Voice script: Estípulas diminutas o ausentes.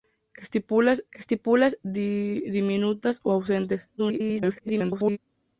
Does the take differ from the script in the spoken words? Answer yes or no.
yes